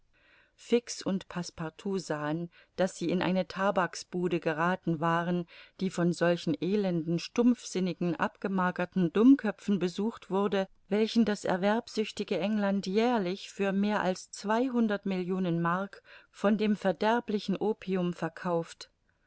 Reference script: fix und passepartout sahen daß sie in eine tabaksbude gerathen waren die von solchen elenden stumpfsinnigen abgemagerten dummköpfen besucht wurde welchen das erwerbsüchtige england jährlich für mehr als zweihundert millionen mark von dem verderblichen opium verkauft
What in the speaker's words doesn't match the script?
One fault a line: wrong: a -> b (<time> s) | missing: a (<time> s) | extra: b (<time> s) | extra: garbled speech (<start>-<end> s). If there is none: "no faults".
no faults